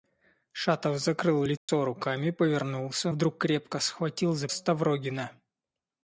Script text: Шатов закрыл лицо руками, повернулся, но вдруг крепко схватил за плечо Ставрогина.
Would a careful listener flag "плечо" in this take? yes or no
yes